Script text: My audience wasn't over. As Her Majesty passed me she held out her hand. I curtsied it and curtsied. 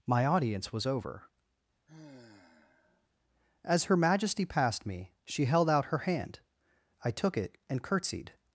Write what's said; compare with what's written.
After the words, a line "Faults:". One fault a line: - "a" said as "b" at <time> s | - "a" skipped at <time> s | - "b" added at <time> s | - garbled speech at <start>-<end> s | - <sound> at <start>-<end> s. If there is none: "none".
My audience was over. As Her Majesty passed me she held out her hand. I took it and curtsied.
Faults:
- "wasn't" said as "was" at 0.7 s
- sigh at 1.9-3.1 s
- "curtsied" said as "took" at 7.1 s